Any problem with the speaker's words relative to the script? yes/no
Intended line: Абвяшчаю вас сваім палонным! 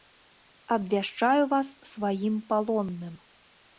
no